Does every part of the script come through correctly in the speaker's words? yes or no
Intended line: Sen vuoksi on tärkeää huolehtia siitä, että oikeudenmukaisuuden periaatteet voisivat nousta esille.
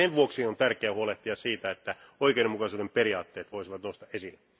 yes